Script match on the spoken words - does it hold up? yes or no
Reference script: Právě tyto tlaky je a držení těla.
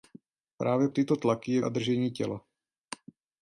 yes